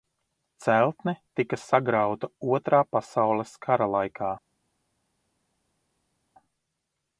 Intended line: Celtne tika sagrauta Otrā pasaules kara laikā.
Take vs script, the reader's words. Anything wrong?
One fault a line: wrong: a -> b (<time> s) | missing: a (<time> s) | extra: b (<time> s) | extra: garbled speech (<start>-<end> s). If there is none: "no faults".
no faults